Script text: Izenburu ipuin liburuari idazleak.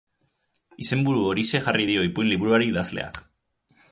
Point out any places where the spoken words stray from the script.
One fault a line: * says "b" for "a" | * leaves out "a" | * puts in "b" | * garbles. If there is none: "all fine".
* puts in "horixe jarri dio"